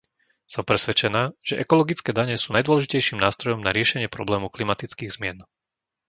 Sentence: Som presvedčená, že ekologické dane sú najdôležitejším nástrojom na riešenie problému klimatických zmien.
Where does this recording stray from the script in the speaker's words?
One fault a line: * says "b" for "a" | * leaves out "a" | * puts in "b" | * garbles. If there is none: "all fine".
all fine